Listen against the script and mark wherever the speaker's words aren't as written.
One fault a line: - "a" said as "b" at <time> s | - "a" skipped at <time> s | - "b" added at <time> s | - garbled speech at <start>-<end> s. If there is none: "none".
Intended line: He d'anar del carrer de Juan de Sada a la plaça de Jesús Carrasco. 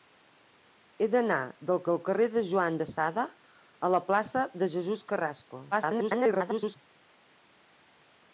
- "del" added at 1.9 s
- garbled speech at 5.7-6.8 s